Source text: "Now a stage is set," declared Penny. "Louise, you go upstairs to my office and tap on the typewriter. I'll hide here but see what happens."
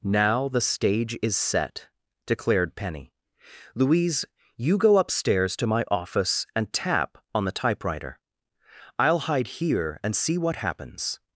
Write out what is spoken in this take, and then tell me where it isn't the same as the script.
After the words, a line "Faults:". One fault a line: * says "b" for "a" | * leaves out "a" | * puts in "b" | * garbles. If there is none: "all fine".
"Now the stage is set," declared Penny. "Louise, you go upstairs to my office and tap on the typewriter. I'll hide here and see what happens."
Faults:
* says "the" for "a"
* says "and" for "but"